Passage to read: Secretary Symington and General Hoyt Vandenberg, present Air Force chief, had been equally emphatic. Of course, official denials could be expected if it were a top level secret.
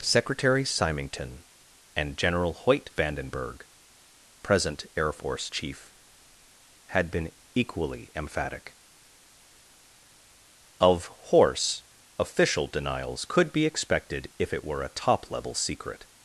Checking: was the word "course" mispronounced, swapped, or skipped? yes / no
yes